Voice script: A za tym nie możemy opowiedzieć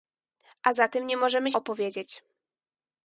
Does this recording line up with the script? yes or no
yes